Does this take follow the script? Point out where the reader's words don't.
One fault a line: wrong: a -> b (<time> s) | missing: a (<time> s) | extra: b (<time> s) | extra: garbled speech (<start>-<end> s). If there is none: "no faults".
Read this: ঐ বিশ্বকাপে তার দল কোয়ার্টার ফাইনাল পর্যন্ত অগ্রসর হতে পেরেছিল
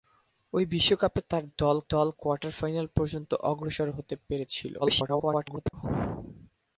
extra: দল (1.9 s)
extra: garbled speech (4.8-5.7 s)